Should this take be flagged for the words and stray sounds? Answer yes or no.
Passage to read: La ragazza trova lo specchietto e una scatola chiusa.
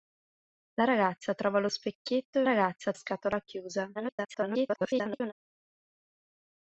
yes